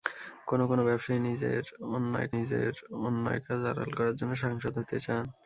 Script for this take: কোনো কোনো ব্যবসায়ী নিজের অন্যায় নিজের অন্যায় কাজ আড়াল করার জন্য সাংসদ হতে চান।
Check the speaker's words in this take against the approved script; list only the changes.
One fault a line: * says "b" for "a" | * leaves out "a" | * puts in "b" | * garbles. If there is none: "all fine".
all fine